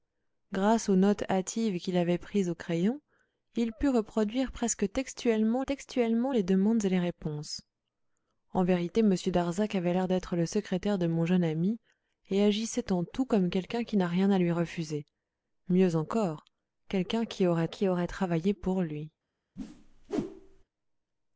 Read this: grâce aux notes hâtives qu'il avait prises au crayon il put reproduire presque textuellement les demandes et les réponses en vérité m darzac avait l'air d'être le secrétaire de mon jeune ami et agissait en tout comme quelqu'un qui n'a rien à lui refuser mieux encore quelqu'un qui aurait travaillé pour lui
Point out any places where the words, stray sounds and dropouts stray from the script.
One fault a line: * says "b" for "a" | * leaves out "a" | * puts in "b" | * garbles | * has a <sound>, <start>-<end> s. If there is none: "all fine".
* puts in "textuellement"
* puts in "qui aurait"
* has a whoosh, 19.6-20.6 s